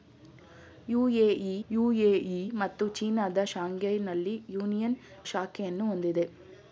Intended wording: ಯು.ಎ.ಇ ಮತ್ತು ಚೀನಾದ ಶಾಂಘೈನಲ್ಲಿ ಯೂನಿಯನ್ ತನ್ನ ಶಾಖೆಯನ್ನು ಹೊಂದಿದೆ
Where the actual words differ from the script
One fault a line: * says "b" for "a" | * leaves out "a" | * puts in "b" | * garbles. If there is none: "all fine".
* puts in "ಯು.ಎ.ಇ"
* leaves out "ತನ್ನ"